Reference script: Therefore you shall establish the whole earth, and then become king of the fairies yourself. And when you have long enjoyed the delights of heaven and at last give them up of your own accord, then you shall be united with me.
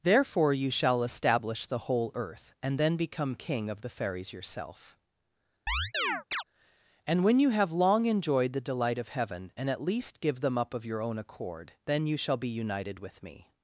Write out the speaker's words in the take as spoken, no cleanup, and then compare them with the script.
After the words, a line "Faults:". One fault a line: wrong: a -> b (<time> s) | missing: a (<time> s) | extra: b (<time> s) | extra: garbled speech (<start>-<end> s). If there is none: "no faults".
Therefore you shall establish the whole earth, and then become king of the fairies yourself. And when you have long enjoyed the delight of heaven and at least give them up of your own accord, then you shall be united with me.
Faults:
wrong: delights -> delight (8.6 s)
wrong: last -> least (9.8 s)